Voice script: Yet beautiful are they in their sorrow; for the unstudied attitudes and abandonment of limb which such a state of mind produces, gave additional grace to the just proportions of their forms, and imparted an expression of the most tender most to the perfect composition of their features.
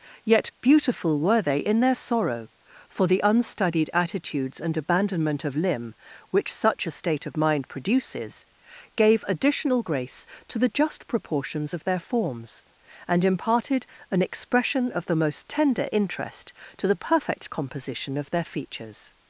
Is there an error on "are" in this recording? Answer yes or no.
yes